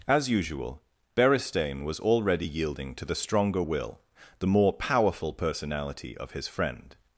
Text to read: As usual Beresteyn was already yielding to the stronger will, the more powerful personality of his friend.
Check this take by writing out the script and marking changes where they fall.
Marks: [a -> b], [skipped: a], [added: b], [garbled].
As usual Beresteyn was already yielding to the stronger will, the more powerful personality of his friend.